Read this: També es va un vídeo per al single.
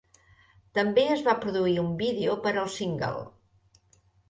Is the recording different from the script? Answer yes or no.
yes